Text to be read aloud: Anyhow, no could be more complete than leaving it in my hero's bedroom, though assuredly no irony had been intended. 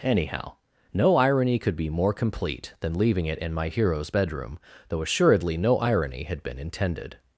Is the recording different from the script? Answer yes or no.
yes